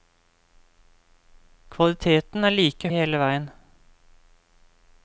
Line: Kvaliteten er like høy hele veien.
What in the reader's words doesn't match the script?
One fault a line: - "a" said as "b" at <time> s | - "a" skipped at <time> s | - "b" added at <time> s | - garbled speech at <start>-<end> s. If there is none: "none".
- "høy" skipped at 2.9 s